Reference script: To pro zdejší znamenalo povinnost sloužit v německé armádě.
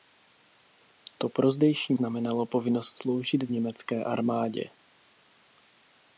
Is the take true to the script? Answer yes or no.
yes